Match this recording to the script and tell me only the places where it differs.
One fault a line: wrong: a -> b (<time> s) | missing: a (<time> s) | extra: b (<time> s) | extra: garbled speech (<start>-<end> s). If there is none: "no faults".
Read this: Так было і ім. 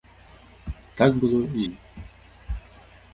no faults